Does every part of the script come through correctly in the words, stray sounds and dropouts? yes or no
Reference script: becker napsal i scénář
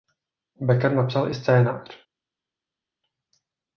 yes